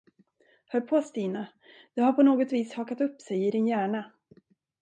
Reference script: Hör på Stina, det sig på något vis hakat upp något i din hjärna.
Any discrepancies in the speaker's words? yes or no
yes